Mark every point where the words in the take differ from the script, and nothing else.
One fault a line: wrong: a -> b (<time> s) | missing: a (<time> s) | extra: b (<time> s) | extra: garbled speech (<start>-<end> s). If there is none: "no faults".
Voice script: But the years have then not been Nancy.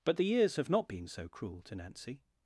missing: then (0.7 s)
extra: so cruel to (1.1 s)